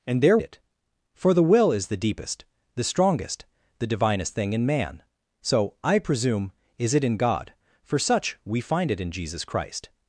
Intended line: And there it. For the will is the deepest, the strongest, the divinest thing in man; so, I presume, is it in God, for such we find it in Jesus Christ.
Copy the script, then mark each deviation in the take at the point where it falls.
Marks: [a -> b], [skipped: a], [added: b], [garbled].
And there it. For the will is the deepest, the strongest, the divinest thing in man; so, I presume, is it in God, for such we find it in Jesus Christ.